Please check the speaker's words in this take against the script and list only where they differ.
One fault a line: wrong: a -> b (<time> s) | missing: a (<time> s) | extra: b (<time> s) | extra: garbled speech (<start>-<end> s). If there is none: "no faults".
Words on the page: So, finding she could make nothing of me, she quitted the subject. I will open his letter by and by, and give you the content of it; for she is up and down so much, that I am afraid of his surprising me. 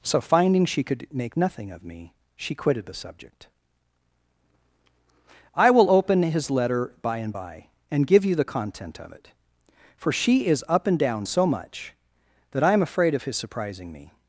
no faults